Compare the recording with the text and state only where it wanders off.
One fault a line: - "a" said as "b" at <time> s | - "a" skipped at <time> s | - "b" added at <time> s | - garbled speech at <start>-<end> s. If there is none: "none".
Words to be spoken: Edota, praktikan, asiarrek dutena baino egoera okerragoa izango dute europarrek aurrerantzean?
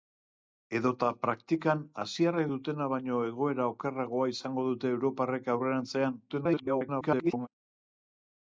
- garbled speech at 6.3-7.5 s